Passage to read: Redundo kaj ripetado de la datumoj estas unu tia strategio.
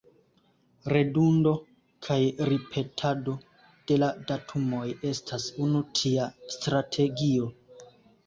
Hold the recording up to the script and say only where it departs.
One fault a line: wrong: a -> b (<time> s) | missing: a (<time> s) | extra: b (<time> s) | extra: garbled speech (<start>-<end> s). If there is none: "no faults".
no faults